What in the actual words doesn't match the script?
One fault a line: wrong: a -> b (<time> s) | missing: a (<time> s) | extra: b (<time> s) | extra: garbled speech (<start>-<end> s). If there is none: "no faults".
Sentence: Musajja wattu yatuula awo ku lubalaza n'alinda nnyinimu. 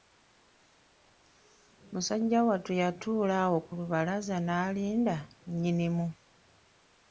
no faults